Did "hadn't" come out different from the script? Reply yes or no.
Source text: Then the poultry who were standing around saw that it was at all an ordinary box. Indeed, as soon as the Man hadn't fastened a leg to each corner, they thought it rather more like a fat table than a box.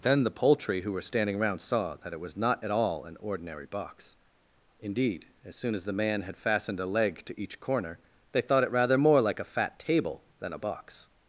yes